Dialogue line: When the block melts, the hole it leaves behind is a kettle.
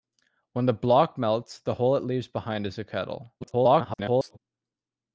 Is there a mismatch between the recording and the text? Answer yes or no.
yes